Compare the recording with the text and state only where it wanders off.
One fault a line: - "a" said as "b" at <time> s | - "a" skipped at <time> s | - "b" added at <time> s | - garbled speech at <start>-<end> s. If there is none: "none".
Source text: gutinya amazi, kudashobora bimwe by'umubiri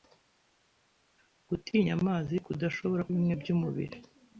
none